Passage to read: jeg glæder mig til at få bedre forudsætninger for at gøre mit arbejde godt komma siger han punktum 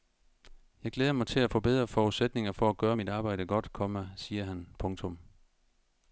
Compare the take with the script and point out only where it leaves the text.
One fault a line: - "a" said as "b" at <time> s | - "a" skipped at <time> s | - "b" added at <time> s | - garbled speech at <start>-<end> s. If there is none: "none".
none